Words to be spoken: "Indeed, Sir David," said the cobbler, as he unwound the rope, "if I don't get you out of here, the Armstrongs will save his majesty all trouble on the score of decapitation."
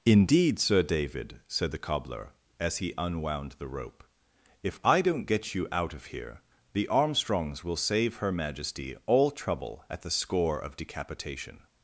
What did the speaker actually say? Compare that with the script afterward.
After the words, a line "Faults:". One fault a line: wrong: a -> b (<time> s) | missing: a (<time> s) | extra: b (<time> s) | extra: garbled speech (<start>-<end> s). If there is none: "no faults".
"Indeed, Sir David," said the cobbler, as he unwound the rope, "if I don't get you out of here, the Armstrongs will save her majesty all trouble at the score of decapitation."
Faults:
wrong: his -> her (8.2 s)
wrong: on -> at (9.9 s)